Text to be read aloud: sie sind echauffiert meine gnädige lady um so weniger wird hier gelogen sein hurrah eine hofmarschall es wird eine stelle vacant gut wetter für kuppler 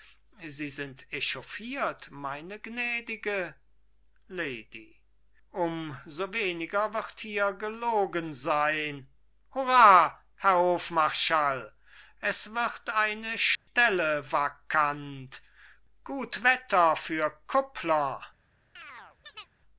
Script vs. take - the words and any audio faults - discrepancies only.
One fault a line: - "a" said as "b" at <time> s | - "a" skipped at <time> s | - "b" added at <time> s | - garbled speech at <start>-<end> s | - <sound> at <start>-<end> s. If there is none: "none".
- "eine" said as "herr" at 10.4 s
- dropout at 13.6-13.7 s
- chirp at 18.8-19.5 s